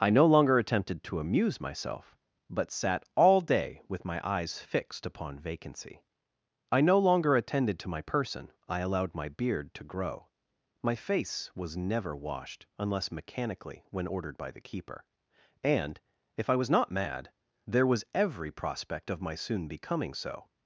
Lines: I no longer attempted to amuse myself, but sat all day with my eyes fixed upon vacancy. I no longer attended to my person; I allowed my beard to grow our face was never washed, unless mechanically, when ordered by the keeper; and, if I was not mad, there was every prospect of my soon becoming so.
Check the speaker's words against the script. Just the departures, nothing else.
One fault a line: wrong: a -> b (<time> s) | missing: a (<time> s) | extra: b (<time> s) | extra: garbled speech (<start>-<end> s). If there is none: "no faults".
wrong: our -> my (10.8 s)